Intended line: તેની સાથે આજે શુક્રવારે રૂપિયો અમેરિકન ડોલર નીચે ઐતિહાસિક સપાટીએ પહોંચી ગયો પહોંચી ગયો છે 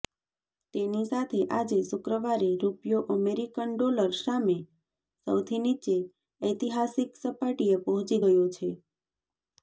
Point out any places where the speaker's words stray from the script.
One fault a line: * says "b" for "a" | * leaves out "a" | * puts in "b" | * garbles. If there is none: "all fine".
* puts in "સામે સૌથી"
* leaves out "પહોંચી ગયો"